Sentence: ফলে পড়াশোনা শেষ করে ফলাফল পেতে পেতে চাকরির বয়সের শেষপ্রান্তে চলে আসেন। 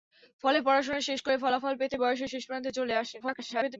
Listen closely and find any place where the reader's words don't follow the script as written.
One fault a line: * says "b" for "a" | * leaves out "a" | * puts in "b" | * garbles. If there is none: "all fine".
* leaves out "পেতে চাকরির"
* garbles